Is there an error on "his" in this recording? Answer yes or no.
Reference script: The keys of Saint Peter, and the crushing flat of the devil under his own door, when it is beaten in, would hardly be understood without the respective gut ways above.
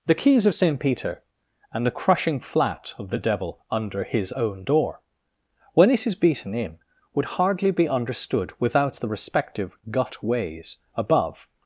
no